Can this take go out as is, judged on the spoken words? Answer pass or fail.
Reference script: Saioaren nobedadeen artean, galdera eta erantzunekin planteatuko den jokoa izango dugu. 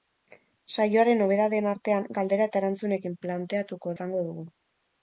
fail